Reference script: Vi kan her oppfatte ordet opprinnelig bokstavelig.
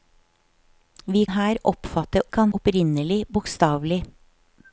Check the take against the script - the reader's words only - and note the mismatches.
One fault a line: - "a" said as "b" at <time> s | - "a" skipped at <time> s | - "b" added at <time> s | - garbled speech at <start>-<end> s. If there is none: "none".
- "kan" skipped at 1.2 s
- "ordet" said as "kan" at 2.3 s